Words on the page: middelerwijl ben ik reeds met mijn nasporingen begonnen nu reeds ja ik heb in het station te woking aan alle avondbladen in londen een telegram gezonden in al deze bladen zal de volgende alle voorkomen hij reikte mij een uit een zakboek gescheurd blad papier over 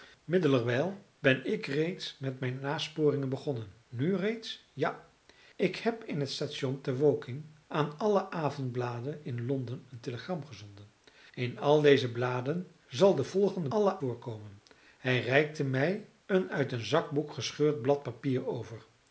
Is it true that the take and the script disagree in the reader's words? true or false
false